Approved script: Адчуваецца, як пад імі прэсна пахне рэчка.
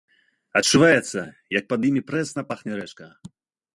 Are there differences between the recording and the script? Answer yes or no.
no